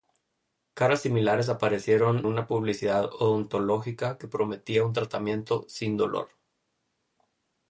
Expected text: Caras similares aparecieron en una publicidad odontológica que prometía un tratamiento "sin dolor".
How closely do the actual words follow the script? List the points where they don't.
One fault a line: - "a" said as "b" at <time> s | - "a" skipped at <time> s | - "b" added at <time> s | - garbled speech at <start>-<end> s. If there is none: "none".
- "en" skipped at 2.2 s